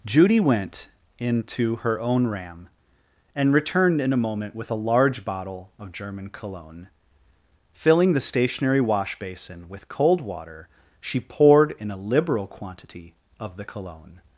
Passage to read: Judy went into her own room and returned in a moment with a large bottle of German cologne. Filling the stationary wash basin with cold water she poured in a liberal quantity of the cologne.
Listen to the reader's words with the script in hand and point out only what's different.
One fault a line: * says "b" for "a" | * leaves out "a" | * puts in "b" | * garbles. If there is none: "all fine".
* says "ram" for "room"